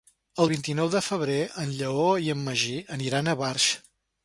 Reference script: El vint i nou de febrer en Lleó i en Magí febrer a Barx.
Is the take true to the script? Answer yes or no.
no